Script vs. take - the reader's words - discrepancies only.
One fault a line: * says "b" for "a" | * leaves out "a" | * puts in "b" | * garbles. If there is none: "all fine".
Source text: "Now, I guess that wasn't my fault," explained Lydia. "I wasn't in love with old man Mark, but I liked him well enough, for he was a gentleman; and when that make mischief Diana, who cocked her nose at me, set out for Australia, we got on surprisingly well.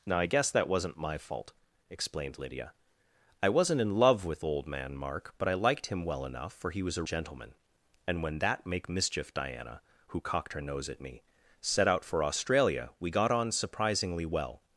all fine